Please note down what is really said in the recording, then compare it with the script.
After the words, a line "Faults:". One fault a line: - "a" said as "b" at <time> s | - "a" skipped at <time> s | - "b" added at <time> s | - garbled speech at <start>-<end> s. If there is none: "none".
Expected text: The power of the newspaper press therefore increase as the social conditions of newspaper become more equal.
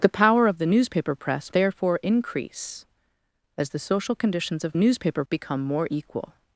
The power of the newspaper press therefore increase as the social conditions of newspaper become more equal.
Faults:
none